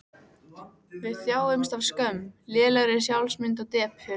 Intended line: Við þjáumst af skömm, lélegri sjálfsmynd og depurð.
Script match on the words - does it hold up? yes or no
yes